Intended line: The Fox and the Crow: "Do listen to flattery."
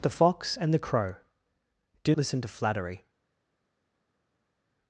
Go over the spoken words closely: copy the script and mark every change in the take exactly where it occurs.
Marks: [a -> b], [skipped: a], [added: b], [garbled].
The Fox and the Crow: "Do listen to flattery."